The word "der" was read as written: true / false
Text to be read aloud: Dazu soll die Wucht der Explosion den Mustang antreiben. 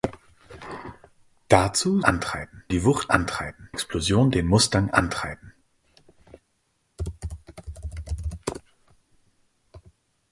false